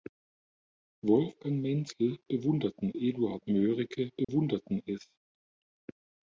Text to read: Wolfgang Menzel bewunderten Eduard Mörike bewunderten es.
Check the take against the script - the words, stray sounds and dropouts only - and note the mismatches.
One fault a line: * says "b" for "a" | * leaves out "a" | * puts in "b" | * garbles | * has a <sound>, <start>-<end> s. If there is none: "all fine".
* has a dropout, 4.2-4.3 s